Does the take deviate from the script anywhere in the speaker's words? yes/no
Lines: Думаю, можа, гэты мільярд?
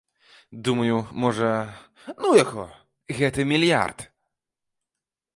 yes